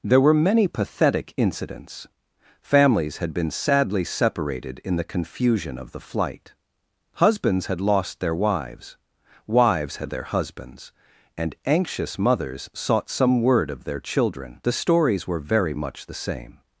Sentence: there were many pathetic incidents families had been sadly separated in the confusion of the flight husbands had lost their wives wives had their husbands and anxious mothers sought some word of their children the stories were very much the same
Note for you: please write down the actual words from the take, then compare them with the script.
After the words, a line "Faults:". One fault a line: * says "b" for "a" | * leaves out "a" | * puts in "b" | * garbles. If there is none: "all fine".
there were many pathetic incidents families had been sadly separated in the confusion of the flight husbands had lost their wives wives had their husbands and anxious mothers sought some word of their children the stories were very much the same
Faults:
all fine